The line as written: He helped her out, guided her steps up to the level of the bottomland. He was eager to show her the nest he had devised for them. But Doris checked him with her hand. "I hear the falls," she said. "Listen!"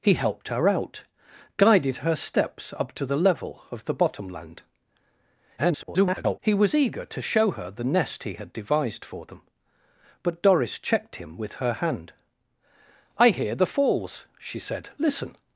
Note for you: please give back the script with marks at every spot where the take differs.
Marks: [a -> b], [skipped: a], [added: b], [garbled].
He helped her out, guided her steps up to the level of the bottomland. [garbled] He was eager to show her the nest he had devised for them. But Doris checked him with her hand. "I hear the falls," she said. "Listen!"